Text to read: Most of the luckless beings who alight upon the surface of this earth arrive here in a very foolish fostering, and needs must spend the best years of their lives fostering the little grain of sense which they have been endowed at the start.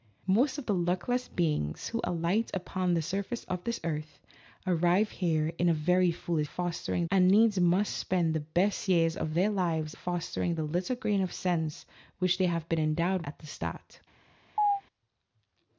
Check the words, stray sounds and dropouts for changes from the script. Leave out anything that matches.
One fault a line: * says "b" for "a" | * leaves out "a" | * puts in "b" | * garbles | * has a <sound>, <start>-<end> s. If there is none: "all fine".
* has a chirp, 14.6-14.8 s